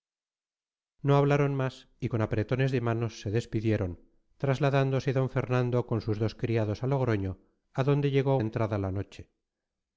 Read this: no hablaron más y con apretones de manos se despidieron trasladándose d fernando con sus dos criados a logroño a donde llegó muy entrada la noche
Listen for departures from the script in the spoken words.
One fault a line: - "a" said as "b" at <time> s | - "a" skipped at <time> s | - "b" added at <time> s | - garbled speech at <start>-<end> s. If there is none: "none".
- "muy" skipped at 8.4 s